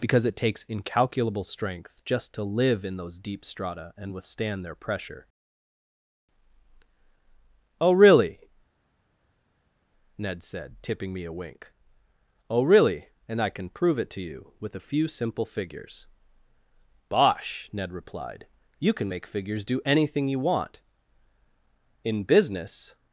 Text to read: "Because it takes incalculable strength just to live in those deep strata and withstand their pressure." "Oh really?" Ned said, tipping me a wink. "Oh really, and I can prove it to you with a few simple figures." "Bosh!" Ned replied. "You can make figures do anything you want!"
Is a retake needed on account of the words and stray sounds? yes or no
yes